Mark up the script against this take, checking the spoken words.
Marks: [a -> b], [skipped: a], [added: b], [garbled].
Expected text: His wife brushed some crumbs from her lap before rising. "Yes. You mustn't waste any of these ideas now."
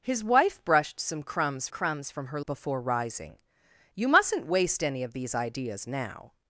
His wife brushed some crumbs [added: crumbs] from her [skipped: lap] before rising. [skipped: "Yes.] You mustn't waste any of these ideas now."